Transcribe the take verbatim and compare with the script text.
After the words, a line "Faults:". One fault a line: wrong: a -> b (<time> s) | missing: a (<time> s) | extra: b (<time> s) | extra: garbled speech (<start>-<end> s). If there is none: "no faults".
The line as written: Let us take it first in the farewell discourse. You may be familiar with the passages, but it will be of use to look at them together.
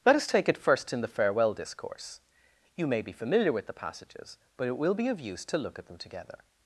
Let us take it first in the farewell discourse. You may be familiar with the passages, but it will be of use to look at them together.
Faults:
no faults